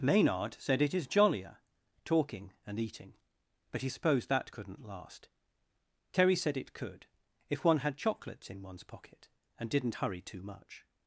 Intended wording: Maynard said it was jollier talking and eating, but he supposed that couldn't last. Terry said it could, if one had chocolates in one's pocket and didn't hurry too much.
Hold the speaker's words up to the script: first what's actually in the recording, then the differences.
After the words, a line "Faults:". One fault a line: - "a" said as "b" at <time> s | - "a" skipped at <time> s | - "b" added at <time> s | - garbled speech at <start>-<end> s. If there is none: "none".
Maynard said it is jollier talking and eating, but he supposed that couldn't last. Terry said it could, if one had chocolates in one's pocket and didn't hurry too much.
Faults:
- "was" said as "is" at 0.9 s